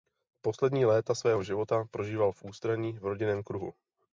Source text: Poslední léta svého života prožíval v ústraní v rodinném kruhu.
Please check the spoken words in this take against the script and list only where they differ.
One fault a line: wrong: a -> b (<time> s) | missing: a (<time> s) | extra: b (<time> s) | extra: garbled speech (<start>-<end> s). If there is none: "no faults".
no faults